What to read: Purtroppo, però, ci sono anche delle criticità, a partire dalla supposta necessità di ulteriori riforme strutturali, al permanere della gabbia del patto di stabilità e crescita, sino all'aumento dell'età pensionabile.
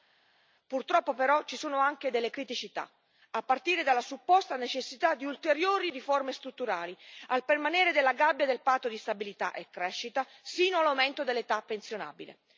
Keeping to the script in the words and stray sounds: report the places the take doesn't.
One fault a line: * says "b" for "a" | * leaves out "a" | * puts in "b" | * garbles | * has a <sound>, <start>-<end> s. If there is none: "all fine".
all fine